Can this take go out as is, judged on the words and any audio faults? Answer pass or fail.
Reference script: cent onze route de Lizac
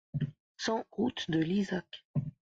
fail